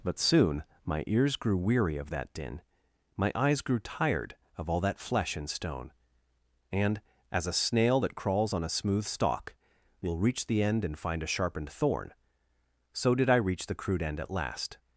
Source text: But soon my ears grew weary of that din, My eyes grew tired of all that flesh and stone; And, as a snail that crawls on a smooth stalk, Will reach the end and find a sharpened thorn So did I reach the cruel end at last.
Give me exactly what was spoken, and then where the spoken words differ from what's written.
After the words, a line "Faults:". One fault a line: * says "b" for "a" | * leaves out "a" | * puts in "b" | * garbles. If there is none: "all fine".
But soon my ears grew weary of that din, My eyes grew tired of all that flesh and stone; And, as a snail that crawls on a smooth stalk, Will reach the end and find a sharpened thorn So did I reach the crude end at last.
Faults:
* says "crude" for "cruel"